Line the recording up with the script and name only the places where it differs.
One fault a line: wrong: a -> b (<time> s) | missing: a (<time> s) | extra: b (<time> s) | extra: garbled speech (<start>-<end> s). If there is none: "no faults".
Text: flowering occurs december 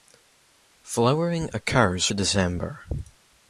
no faults